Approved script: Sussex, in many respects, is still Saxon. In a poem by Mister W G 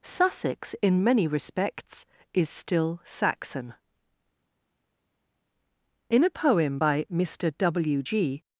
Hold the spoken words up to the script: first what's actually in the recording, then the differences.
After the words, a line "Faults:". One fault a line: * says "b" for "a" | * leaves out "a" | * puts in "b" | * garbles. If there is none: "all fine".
Sussex, in many respects, is still Saxon. In a poem by Mister W G
Faults:
all fine